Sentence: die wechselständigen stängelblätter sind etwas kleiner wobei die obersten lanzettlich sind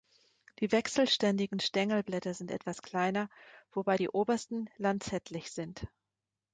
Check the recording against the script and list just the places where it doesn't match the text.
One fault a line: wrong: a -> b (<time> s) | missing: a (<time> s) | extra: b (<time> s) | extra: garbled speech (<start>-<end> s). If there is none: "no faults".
no faults